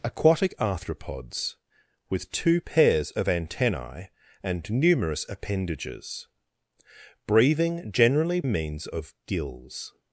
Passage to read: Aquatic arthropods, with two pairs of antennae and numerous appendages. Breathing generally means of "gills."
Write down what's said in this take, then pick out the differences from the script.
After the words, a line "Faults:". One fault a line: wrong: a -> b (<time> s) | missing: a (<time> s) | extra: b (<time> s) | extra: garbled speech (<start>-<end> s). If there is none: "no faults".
Aquatic arthropods, with two pairs of antennae and numerous appendages. Breathing generally means of "gills."
Faults:
no faults